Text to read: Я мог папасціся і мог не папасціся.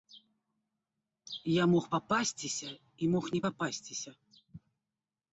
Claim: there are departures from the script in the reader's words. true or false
false